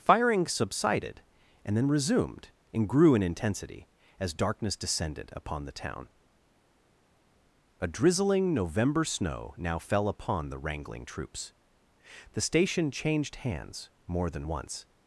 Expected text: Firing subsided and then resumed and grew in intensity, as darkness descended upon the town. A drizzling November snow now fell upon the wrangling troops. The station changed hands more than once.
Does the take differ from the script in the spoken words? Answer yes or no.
no